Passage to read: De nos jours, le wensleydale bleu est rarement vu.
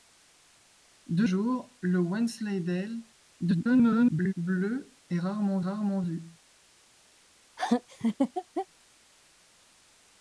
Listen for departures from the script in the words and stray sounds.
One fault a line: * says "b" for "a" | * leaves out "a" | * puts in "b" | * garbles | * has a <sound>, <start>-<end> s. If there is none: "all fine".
* leaves out "nos"
* garbles
* puts in "rarement"
* has a laugh, 7.6-8.7 s